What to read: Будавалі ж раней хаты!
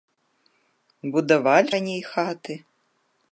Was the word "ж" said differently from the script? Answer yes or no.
yes